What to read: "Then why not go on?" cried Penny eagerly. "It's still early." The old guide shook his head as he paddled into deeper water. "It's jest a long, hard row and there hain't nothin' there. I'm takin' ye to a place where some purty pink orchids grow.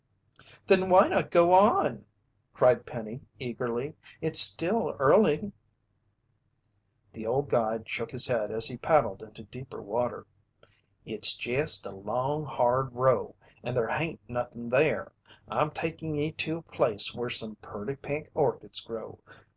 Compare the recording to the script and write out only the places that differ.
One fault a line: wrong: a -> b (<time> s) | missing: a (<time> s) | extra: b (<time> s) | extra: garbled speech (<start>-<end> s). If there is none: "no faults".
no faults